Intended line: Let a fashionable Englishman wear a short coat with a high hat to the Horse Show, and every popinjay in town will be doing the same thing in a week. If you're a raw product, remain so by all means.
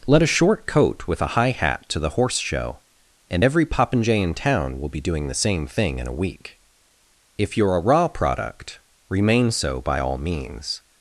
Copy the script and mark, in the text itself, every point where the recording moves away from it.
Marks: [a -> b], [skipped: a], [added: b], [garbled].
Let a [skipped: fashionable Englishman wear a] short coat with a high hat to the Horse Show, and every popinjay in town will be doing the same thing in a week. If you're a raw product, remain so by all means.